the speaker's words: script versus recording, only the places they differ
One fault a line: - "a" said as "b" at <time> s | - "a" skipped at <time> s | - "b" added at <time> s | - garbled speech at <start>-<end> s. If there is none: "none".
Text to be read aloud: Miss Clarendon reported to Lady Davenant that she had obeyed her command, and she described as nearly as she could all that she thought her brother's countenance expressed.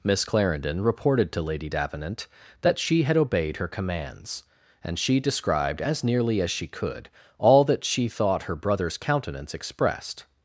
- "command" said as "commands" at 3.7 s